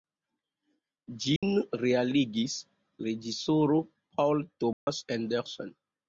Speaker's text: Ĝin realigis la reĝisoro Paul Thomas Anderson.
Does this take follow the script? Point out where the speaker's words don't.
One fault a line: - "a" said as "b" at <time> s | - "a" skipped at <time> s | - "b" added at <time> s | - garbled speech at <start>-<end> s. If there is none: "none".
- "la" skipped at 2.6 s